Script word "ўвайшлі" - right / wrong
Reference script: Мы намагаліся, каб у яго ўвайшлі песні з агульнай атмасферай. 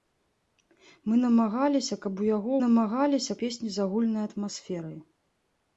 wrong